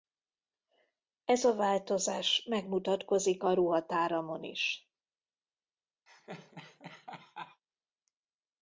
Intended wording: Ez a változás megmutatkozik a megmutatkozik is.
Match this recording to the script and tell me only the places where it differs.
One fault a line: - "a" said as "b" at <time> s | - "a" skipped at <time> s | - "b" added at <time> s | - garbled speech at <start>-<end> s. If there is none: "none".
- "megmutatkozik" said as "ruhatáramon" at 3.5 s